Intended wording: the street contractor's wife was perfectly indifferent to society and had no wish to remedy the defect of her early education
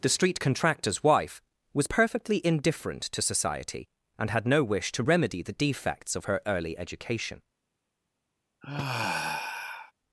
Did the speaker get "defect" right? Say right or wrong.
wrong